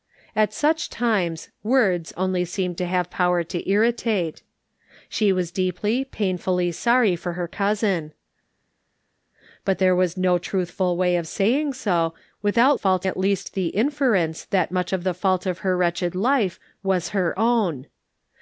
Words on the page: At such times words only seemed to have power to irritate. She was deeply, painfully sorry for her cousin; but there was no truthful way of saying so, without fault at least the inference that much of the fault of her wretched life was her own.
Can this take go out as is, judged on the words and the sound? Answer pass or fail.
pass